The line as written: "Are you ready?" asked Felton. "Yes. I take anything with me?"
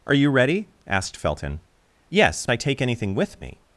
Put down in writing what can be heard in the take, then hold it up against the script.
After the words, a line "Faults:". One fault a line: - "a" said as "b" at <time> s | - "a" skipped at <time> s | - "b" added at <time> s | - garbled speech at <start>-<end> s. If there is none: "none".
"Are you ready?" asked Felton. "Yes. I take anything with me?"
Faults:
none